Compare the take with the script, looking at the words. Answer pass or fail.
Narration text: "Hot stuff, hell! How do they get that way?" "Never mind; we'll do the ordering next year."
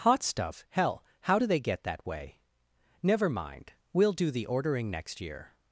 pass